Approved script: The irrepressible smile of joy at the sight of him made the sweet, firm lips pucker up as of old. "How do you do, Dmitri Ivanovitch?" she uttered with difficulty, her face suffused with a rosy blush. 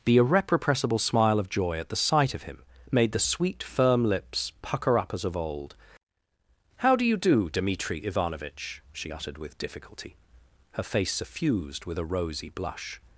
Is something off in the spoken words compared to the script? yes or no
no